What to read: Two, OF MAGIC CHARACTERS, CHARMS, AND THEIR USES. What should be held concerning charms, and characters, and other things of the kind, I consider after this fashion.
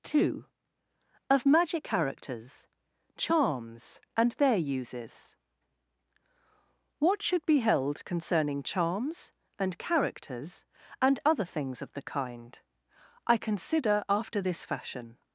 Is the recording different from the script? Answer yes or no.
no